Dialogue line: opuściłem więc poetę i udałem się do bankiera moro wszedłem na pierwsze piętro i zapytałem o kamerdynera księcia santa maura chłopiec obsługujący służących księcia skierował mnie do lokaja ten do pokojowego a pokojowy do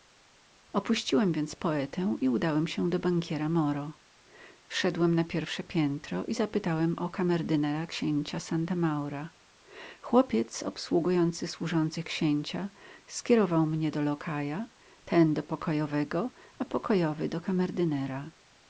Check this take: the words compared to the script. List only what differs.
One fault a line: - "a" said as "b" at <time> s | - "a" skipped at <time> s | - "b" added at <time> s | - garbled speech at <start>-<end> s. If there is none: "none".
none